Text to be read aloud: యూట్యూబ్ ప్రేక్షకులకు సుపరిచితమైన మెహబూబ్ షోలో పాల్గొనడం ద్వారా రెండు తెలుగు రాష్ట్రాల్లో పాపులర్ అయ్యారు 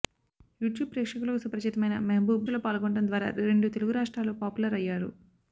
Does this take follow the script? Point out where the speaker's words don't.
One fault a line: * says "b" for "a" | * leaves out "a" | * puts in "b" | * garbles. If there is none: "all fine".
all fine